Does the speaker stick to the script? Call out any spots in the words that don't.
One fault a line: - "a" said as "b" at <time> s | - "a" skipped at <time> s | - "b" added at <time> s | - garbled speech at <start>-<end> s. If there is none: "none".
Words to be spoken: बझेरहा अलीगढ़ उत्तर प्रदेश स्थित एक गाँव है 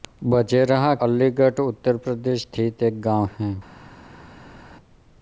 none